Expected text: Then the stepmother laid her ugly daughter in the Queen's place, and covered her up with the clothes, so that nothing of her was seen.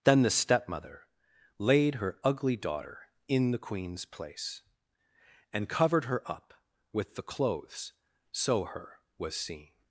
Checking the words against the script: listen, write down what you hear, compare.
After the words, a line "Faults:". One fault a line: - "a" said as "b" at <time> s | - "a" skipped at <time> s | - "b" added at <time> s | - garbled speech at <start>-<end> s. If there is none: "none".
Then the stepmother laid her ugly daughter in the Queen's place, and covered her up with the clothes, so her was seen.
Faults:
- "that nothing of" skipped at 8.7 s